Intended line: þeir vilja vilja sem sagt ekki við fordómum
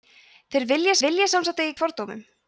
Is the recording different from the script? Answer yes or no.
no